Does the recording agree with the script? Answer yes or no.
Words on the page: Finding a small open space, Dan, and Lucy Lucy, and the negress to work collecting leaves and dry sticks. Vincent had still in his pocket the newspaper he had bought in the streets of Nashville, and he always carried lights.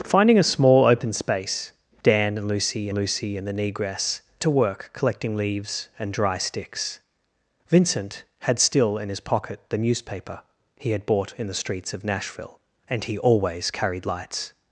yes